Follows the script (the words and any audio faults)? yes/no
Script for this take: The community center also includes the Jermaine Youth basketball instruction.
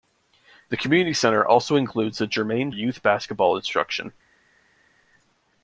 yes